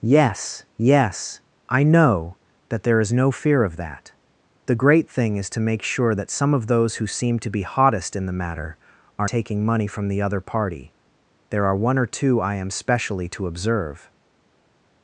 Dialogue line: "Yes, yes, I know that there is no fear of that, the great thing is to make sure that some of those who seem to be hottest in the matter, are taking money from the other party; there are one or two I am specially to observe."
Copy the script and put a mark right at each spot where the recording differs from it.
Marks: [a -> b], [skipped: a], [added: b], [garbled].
"Yes, yes, I know that there is no fear of that, the great thing is to make sure that some of those who seem to be hottest in the matter, are taking money from the other party; there are one or two I am specially to observe."